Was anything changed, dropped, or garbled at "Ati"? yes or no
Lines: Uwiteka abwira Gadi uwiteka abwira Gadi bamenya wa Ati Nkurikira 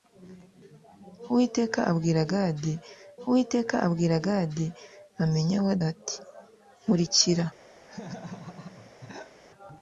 no